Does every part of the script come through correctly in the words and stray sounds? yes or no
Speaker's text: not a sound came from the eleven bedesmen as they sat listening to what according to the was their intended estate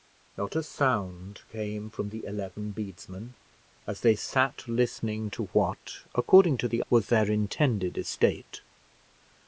yes